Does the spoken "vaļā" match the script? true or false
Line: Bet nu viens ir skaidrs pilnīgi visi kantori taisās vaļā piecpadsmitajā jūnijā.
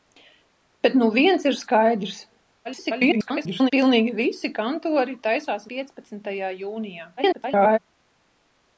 false